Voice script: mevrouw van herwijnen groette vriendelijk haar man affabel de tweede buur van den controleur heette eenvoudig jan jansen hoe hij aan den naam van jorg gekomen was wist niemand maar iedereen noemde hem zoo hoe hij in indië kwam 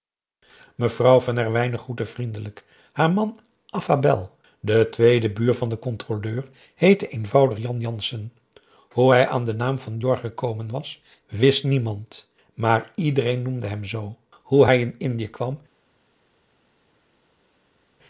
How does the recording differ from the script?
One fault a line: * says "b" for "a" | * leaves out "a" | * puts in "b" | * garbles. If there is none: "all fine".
all fine